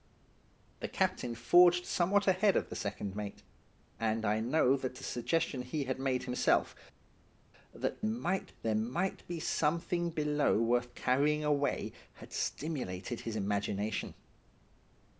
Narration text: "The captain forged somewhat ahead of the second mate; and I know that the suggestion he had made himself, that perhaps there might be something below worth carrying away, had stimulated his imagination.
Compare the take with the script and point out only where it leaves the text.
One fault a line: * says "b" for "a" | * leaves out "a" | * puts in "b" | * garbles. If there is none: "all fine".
* says "might" for "perhaps"